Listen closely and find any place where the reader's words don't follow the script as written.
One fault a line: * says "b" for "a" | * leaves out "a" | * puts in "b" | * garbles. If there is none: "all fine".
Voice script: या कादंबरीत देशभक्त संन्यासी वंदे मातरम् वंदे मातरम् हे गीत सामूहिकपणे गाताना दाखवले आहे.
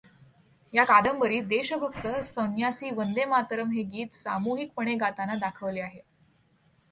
* leaves out "वंदे मातरम्"